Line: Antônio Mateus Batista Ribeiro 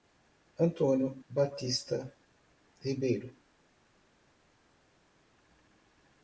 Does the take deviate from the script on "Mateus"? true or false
true